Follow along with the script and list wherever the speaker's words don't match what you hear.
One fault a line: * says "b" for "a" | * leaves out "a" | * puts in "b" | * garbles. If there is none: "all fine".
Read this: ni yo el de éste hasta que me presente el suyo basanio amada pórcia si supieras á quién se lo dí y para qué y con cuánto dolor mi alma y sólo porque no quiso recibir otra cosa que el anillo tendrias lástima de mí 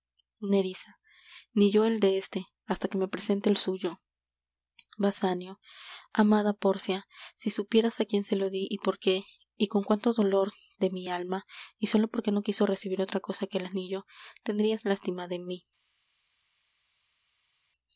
* says "por" for "para"
* puts in "de"